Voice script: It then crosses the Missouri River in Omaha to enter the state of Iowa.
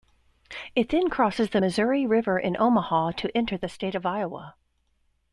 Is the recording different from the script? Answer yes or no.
no